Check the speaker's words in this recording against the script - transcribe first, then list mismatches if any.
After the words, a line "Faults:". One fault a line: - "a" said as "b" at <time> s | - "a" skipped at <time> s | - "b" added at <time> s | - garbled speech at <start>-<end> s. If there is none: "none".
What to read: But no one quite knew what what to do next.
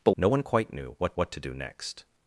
But no one quite knew what what to do next.
Faults:
none